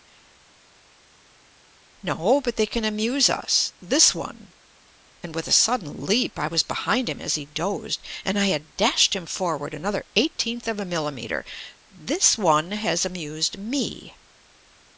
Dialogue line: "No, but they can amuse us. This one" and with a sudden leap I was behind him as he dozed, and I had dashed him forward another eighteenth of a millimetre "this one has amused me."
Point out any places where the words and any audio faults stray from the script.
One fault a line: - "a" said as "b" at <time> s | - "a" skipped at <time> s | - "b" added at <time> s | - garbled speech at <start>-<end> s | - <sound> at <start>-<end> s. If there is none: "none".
none